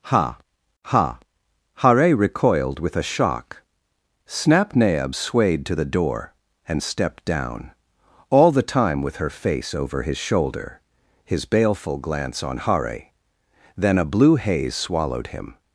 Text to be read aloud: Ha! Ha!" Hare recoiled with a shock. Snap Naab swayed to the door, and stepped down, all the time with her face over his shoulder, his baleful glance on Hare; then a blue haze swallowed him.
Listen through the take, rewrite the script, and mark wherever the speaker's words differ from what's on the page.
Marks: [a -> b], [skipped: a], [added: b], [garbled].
Ha! Ha!" Hare recoiled with a shock. Snap Naab swayed to the door, and stepped down, all the time with her face over his shoulder, his baleful glance on Hare; then a blue haze swallowed him.